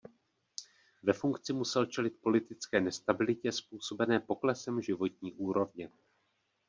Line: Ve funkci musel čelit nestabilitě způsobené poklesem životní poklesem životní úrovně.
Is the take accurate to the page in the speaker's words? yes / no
no